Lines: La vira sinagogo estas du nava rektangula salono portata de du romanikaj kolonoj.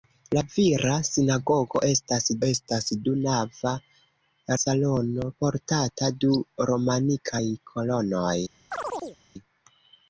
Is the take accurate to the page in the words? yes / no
no